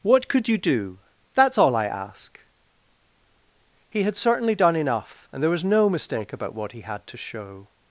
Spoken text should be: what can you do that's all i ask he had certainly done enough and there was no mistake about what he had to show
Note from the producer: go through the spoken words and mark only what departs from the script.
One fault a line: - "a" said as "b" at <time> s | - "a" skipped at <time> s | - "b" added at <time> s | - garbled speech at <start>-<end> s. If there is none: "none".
- "can" said as "could" at 0.3 s